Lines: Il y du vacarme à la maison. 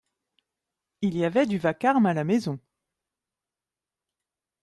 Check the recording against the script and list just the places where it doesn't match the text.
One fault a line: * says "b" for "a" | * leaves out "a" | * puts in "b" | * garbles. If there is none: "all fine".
* puts in "avait"